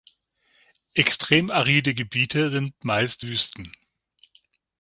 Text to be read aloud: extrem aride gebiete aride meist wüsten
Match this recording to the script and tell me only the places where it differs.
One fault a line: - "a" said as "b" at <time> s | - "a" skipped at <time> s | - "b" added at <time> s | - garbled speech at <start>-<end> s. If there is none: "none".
- "aride" said as "sind" at 2.5 s